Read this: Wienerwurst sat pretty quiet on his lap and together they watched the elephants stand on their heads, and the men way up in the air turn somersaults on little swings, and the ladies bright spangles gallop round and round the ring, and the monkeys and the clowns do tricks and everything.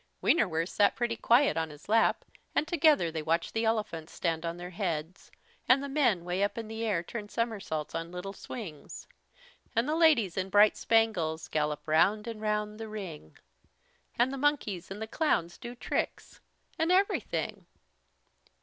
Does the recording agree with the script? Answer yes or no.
no